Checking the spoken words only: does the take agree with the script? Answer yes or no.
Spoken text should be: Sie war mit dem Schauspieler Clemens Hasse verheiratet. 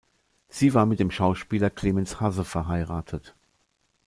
yes